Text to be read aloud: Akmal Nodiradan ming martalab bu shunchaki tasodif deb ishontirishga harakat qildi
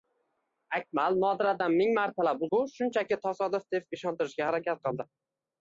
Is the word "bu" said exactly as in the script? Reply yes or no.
yes